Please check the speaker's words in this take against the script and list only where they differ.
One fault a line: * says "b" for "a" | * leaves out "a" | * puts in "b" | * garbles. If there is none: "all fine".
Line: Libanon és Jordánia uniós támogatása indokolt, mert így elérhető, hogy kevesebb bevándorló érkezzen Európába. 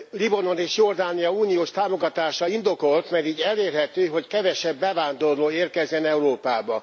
all fine